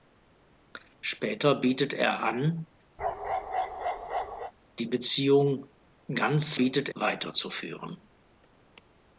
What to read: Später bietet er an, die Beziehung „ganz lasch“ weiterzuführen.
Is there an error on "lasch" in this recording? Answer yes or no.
yes